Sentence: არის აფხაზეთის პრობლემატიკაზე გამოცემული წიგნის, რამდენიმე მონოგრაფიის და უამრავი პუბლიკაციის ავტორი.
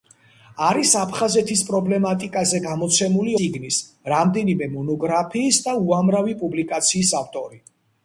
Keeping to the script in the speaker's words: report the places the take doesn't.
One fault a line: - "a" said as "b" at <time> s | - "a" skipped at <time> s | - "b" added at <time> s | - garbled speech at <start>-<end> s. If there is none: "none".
none